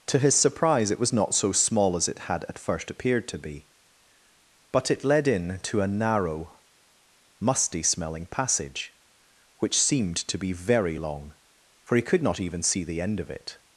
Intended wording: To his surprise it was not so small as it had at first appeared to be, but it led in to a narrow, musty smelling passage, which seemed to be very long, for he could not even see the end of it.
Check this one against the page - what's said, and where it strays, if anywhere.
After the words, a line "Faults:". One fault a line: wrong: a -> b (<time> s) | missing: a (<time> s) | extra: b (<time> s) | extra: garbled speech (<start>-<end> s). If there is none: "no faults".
To his surprise it was not so small as it had at first appeared to be, but it led in to a narrow, musty smelling passage, which seemed to be very long, for he could not even see the end of it.
Faults:
no faults